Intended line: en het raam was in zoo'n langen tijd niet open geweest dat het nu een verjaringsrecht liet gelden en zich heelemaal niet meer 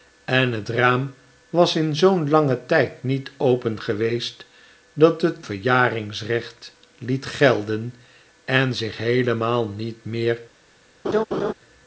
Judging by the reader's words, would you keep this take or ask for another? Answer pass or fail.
fail